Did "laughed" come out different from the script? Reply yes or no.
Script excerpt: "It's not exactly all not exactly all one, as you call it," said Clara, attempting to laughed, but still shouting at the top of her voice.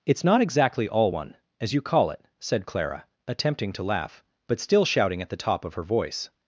yes